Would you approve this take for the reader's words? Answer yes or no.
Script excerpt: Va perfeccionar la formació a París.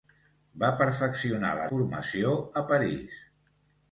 yes